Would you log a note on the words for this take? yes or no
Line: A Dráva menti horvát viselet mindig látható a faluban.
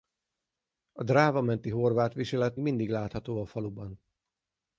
no